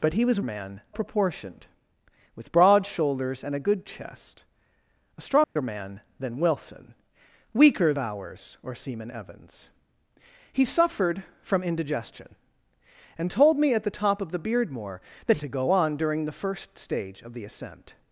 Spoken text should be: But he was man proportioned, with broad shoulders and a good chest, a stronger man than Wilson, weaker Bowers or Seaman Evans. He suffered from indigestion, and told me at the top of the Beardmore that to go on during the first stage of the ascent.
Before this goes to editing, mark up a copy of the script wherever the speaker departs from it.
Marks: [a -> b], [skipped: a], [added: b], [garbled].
But he was man proportioned, with broad shoulders and a good chest, a stronger man than Wilson, weaker Bowers or Seaman Evans. He suffered from indigestion, and told me at the top of the Beardmore that to go on during the first stage of the ascent.